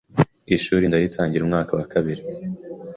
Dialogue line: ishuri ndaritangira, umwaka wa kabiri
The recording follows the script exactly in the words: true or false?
true